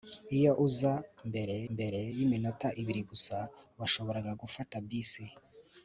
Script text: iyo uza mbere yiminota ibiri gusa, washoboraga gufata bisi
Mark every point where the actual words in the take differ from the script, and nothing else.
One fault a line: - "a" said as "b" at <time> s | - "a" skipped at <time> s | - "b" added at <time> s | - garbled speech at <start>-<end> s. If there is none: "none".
- "mbere" added at 1.7 s